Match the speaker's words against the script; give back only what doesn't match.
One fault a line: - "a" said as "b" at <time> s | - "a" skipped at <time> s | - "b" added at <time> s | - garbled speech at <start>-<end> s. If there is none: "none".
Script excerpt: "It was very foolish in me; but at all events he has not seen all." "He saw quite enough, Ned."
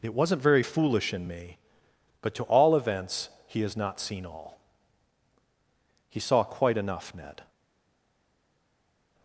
- "was" said as "wasn't" at 0.1 s
- "at" said as "to" at 2.4 s